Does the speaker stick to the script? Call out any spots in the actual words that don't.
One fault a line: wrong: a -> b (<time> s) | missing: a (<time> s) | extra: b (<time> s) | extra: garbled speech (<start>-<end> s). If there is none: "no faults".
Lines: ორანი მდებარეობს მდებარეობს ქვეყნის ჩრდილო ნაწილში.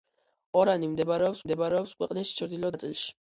no faults